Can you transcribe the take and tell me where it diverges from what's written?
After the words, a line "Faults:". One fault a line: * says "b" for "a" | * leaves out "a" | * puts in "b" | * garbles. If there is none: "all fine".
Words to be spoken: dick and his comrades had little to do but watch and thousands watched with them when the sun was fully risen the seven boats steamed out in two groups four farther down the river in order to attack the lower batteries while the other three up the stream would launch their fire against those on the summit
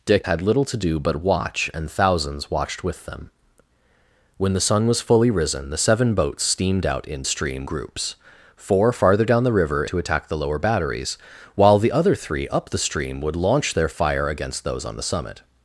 dick had little to do but watch and thousands watched with them when the sun was fully risen the seven boats steamed out in stream groups four farther down the river to attack the lower batteries while the other three up the stream would launch their fire against those on the summit
Faults:
* leaves out "and his comrades"
* says "stream" for "two"
* leaves out "in order"